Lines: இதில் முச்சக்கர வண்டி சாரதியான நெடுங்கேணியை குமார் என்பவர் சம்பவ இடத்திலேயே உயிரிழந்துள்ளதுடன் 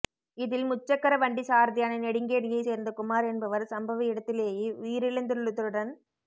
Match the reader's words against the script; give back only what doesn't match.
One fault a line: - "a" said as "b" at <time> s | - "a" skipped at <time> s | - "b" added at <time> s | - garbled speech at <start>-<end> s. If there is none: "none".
- "சேர்ந்த" added at 2.6 s